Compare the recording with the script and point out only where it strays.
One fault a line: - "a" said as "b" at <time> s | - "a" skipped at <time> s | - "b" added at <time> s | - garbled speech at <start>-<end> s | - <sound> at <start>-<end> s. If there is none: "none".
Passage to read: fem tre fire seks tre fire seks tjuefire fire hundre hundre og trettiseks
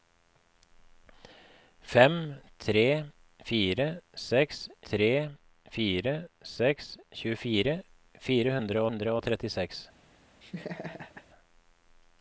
- laugh at 10.4-11.3 s